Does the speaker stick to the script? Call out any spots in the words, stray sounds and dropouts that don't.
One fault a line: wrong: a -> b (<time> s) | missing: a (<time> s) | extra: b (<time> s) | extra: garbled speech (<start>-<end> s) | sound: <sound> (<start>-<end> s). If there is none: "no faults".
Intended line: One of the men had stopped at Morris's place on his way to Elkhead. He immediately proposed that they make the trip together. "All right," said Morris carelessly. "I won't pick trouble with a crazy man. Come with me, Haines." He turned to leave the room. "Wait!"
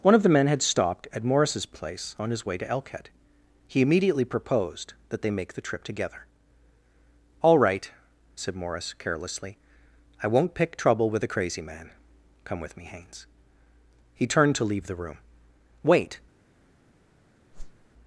sound: whoosh (17.5-17.9 s)